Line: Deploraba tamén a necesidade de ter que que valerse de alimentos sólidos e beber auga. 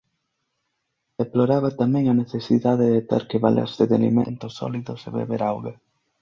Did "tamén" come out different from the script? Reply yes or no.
no